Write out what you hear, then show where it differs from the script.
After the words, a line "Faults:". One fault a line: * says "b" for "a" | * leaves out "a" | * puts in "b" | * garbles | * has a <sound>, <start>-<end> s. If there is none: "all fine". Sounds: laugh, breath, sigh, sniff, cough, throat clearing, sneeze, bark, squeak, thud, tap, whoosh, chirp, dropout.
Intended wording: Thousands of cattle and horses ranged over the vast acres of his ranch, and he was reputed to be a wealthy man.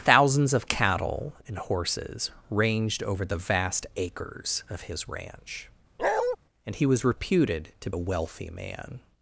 Thousands of cattle and horses ranged over the vast acres of his ranch, and he was reputed to a wealthy man.
Faults:
* has a bark, 6.0-6.4 s
* leaves out "be"